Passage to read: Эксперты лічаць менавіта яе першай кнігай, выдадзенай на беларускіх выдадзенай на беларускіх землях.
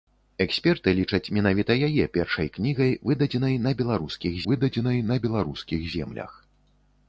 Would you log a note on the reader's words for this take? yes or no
no